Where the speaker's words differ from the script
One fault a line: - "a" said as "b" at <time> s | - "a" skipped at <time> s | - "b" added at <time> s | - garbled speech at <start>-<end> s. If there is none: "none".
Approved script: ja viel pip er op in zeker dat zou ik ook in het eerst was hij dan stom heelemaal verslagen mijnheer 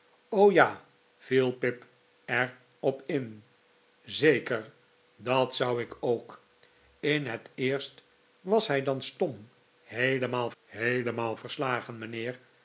- "heelemaal" added at 10.6 s